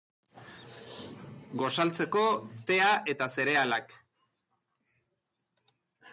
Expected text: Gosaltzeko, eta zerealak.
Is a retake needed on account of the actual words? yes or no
yes